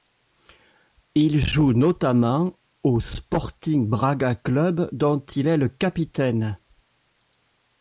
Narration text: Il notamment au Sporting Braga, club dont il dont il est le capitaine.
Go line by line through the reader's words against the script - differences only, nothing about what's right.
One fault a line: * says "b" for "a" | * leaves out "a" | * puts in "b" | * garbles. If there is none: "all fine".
* puts in "joue"
* leaves out "dont il"